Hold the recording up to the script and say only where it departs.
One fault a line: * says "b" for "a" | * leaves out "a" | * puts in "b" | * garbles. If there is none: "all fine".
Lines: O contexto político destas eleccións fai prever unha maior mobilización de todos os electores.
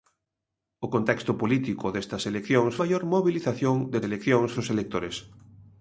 * leaves out "fai prever unha"
* says "eleccións" for "todos"